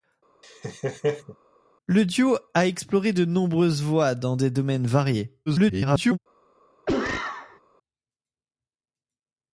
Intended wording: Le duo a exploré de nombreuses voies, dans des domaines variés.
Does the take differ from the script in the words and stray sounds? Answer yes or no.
yes